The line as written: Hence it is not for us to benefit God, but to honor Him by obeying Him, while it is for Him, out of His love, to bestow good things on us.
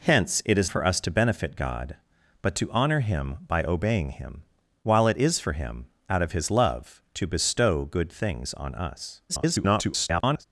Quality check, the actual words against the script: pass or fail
fail